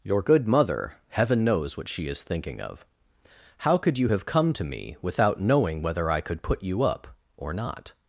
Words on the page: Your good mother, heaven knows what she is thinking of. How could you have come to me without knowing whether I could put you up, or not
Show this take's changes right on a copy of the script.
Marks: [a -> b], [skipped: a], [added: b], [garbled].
Your good mother, heaven knows what she is thinking of. How could you have come to me without knowing whether I could put you up, or not